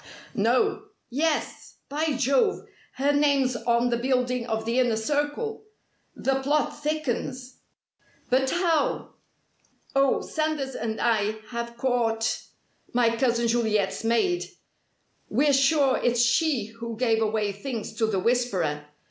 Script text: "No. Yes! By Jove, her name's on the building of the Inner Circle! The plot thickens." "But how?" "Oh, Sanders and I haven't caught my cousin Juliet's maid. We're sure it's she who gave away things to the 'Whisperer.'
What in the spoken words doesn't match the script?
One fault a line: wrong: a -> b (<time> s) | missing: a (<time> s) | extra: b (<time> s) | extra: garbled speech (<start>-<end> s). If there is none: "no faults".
wrong: haven't -> have (11.5 s)